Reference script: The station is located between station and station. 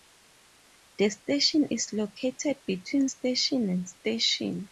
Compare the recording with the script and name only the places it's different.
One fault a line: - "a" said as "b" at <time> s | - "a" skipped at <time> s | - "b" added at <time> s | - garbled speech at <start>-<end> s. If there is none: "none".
none